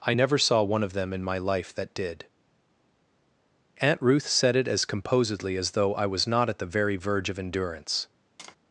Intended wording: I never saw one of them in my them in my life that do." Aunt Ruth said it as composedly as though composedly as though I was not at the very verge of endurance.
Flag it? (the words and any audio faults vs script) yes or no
yes